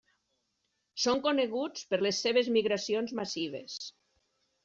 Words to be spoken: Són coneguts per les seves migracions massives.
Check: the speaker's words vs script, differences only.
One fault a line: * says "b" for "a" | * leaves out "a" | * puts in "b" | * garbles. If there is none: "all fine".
all fine